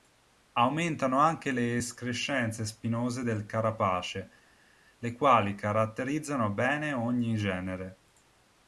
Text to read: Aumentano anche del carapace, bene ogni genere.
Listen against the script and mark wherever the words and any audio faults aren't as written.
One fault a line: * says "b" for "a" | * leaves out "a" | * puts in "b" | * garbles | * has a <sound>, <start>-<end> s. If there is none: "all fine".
* puts in "le escrescenze spinose"
* puts in "le quali caratterizzano"